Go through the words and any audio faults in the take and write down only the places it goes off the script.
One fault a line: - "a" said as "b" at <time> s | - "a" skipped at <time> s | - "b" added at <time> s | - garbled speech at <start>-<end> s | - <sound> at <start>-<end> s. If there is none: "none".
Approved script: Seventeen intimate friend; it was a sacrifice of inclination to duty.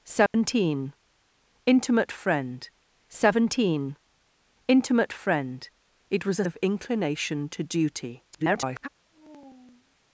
- dropout at 0.3-0.3 s
- "seventeen intimate friend" added at 3.1 s
- "sacrifice" skipped at 6.4 s
- garbled speech at 8.3-8.9 s
- sigh at 9.0-10.0 s